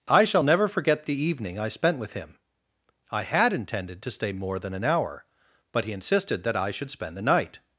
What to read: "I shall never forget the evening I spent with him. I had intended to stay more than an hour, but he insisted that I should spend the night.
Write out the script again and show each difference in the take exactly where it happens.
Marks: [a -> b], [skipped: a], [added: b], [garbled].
"I shall never forget the evening I spent with him. I had intended to stay more than an hour, but he insisted that I should spend the night.